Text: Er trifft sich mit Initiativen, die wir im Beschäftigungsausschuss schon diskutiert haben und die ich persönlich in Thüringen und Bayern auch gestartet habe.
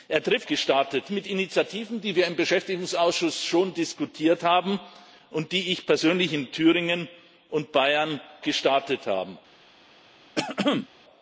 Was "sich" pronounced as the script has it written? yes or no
no